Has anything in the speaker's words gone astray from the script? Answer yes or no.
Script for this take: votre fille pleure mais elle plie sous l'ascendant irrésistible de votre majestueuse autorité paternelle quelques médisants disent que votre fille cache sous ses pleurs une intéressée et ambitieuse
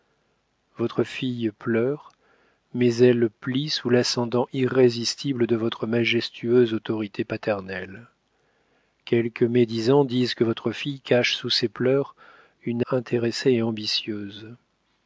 no